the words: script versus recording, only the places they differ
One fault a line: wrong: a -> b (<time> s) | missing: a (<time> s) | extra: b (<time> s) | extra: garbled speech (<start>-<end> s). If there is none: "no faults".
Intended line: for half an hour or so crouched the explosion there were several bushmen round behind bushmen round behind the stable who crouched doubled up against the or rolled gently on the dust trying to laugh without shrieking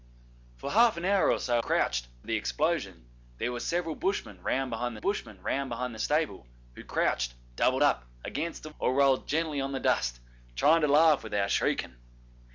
no faults